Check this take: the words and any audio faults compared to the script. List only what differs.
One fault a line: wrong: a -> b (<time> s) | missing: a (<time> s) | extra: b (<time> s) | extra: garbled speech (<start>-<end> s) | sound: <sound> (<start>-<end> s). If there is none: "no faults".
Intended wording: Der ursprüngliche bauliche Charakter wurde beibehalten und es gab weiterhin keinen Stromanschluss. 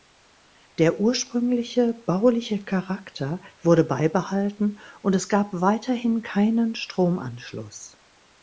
no faults